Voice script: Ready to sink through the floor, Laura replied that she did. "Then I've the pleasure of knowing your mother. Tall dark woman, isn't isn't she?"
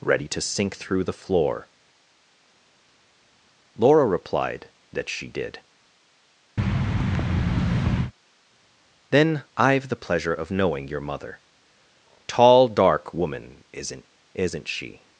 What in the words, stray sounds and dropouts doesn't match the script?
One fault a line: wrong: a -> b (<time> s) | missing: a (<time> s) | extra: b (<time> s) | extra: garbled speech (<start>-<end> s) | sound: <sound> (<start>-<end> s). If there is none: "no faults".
sound: thud (6.6-8.1 s)